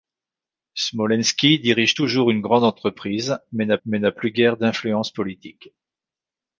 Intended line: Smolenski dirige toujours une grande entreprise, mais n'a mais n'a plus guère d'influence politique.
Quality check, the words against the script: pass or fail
pass